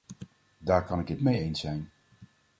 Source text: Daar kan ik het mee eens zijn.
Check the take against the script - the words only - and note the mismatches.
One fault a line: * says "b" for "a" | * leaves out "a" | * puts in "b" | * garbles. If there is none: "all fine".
all fine